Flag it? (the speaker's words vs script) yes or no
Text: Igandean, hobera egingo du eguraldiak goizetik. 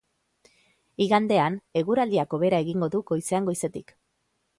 yes